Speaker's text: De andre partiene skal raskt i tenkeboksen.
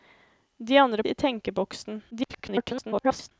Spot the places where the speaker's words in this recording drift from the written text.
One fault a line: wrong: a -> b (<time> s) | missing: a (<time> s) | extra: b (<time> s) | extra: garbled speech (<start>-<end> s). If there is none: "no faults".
missing: partiene skal raskt (1.0 s)
extra: garbled speech (2.1-3.3 s)